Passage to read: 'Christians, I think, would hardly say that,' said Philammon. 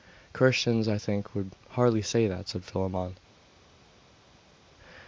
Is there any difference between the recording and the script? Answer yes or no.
no